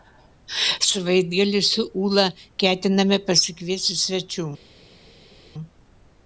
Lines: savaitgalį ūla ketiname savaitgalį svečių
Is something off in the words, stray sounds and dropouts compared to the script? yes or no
yes